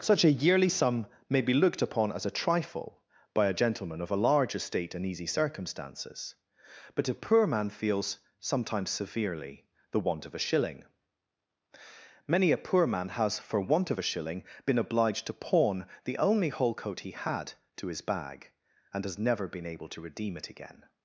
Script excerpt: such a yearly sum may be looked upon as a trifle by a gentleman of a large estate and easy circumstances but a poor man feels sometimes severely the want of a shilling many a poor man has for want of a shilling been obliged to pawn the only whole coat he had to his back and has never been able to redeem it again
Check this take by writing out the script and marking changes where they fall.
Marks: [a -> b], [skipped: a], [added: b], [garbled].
such a yearly sum may be looked upon as a trifle by a gentleman of a large estate and easy circumstances but a poor man feels sometimes severely the want of a shilling many a poor man has for want of a shilling been obliged to pawn the only whole coat he had to his [back -> bag] and has never been able to redeem it again